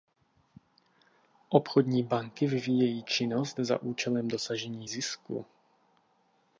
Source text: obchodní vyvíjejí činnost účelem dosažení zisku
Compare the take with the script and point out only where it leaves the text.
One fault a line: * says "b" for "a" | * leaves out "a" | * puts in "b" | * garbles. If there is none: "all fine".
* puts in "banky"
* puts in "za"